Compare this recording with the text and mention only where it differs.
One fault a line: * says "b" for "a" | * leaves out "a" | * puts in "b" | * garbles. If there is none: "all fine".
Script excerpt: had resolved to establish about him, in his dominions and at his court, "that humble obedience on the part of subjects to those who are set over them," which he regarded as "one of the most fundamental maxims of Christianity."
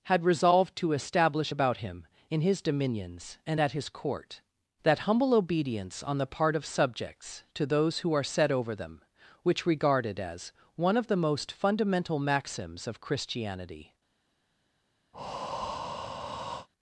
* leaves out "he"